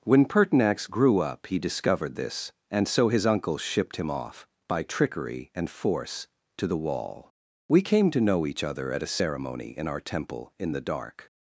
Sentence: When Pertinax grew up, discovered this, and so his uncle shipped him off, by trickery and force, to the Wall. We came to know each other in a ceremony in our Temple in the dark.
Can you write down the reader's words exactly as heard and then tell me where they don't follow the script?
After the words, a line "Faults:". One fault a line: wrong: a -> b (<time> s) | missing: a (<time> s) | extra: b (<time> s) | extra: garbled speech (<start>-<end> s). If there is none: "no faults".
When Pertinax grew up, he discovered this, and so his uncle shipped him off, by trickery and force, to the Wall. We came to know each other at a ceremony in our Temple in the dark.
Faults:
extra: he (1.4 s)
wrong: in -> at (8.9 s)